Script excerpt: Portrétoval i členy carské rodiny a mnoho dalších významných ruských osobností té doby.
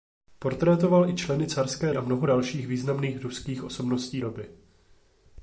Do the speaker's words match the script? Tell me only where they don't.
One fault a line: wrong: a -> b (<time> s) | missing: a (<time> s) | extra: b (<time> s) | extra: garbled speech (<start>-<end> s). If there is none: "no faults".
missing: rodiny (1.9 s)
missing: té (4.2 s)